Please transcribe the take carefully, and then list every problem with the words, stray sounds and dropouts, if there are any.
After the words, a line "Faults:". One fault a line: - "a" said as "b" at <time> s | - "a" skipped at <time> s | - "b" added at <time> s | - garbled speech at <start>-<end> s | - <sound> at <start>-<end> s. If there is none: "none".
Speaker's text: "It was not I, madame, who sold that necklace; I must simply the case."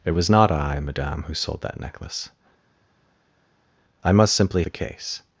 "It was not I, madame, who sold that necklace; I must simply the case."
Faults:
none